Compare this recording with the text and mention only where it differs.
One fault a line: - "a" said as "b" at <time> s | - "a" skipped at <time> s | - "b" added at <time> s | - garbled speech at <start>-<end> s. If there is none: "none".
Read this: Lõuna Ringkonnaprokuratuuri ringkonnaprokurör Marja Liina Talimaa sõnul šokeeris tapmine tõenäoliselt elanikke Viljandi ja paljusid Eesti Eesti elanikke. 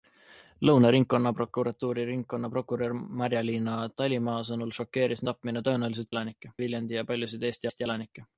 none